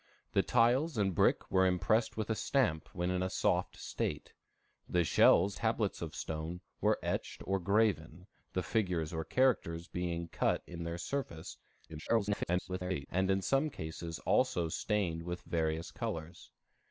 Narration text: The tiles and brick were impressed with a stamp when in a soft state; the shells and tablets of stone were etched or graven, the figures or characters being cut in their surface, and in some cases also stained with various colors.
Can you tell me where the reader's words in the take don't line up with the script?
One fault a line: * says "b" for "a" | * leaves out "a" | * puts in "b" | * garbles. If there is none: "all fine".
* leaves out "and"
* garbles